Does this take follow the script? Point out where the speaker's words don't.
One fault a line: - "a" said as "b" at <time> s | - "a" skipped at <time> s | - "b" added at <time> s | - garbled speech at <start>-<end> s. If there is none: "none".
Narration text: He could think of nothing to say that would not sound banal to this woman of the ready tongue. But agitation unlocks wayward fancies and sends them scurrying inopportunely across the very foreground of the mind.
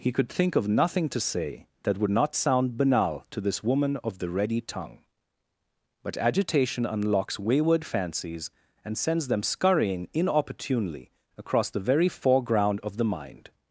none